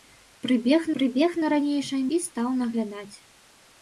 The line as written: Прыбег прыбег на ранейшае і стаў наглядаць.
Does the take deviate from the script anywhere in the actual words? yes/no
no